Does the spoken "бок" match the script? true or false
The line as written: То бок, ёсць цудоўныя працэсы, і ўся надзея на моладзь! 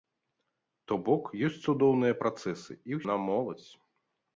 true